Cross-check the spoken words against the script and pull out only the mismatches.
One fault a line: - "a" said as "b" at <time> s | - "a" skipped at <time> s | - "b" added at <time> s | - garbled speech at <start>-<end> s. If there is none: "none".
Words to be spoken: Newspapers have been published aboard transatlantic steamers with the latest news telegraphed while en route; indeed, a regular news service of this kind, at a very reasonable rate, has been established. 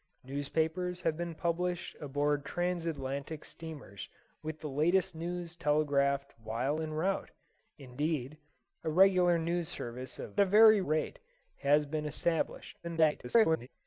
- "this kind at" skipped at 10.4 s
- "reasonable" skipped at 10.8 s
- garbled speech at 12.8-13.7 s